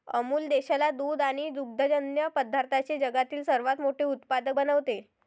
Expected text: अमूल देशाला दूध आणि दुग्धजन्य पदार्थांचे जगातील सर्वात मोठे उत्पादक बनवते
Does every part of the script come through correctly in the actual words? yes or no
yes